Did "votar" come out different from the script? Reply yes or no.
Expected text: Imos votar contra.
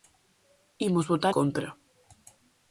no